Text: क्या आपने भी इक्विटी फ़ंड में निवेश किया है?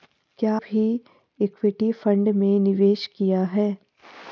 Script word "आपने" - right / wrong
wrong